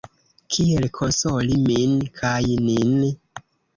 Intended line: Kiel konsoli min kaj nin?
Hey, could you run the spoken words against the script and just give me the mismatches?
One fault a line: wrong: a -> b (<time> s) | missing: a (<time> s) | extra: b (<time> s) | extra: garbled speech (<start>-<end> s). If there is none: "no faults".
no faults